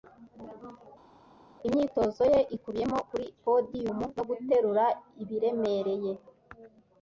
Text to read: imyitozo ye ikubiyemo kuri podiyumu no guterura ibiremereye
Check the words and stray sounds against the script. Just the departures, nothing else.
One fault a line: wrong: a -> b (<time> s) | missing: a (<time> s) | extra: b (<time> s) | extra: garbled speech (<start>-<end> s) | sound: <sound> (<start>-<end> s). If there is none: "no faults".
no faults